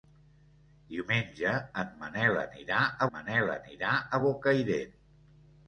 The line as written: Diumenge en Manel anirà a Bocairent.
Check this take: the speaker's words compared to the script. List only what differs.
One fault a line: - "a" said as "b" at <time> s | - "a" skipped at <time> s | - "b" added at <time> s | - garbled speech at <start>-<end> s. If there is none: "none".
- "Manel anirà a" added at 3.1 s